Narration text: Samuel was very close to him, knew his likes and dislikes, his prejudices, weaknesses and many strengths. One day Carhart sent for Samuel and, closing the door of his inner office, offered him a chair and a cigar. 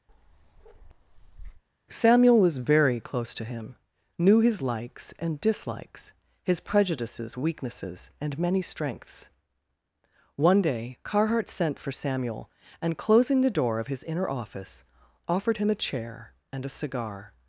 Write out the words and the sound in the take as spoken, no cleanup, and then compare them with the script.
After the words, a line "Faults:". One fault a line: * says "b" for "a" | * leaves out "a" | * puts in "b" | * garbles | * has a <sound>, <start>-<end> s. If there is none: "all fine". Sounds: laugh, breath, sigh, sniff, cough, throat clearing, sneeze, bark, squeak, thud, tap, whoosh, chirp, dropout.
Samuel was very close to him, knew his likes and dislikes, his prejudices, weaknesses and many strengths. One day Carhart sent for Samuel and, closing the door of his inner office, offered him a chair and a cigar.
Faults:
* has a bark, 0.1-1.6 s